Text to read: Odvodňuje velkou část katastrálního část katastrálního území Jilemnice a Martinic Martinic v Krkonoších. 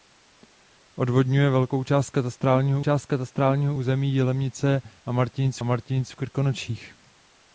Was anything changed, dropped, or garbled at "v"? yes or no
no